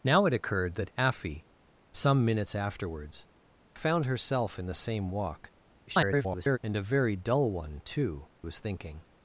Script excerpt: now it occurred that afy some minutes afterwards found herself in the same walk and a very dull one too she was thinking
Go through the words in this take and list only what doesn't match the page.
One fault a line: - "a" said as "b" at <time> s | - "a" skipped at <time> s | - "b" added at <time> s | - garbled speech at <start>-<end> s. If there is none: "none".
- garbled speech at 5.9-6.6 s
- "she" skipped at 8.3 s